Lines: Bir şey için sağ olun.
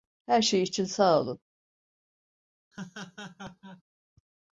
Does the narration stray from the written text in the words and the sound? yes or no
yes